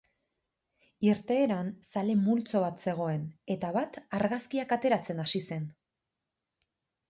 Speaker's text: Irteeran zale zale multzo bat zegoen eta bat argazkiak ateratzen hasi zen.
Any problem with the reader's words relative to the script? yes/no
yes